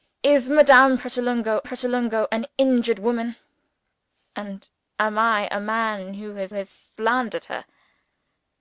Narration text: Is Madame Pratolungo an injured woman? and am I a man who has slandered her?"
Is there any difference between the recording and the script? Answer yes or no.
yes